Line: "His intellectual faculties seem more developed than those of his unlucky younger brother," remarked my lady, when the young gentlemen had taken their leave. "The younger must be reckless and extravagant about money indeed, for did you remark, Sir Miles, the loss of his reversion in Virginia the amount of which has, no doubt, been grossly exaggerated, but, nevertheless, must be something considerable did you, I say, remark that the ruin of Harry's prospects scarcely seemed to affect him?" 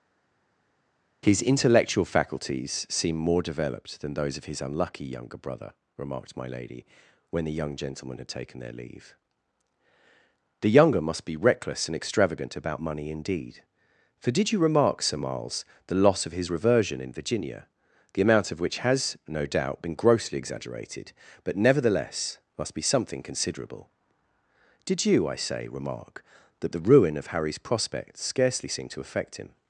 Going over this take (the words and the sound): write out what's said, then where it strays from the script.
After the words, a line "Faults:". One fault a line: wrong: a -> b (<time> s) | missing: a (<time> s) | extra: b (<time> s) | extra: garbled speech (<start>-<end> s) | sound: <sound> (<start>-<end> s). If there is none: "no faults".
"His intellectual faculties seem more developed than those of his unlucky younger brother," remarked my lady, when the young gentlemen had taken their leave. "The younger must be reckless and extravagant about money indeed, for did you remark, Sir Miles, the loss of his reversion in Virginia the amount of which has, no doubt, been grossly exaggerated, but, nevertheless, must be something considerable did you, I say, remark that the ruin of Harry's prospects scarcely seemed to affect him?"
Faults:
no faults